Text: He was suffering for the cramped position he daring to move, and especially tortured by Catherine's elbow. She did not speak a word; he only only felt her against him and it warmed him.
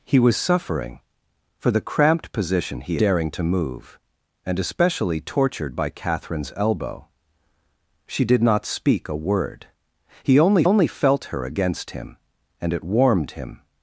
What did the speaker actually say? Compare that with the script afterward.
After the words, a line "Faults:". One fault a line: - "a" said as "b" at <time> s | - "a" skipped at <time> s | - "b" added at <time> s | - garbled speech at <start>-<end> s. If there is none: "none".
He was suffering for the cramped position he daring to move, and especially tortured by Catherine's elbow. She did not speak a word; he only only felt her against him and it warmed him.
Faults:
none